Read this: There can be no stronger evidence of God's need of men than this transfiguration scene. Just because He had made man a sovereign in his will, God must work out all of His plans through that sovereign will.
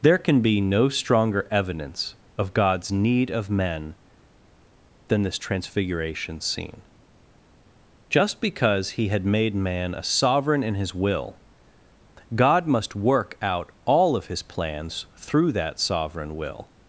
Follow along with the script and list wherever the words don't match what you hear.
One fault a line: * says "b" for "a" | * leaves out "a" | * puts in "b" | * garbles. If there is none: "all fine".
all fine